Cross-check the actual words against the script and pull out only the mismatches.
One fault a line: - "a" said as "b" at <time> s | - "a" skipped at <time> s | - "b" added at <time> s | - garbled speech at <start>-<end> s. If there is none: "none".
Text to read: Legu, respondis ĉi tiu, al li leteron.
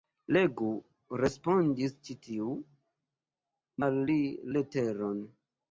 none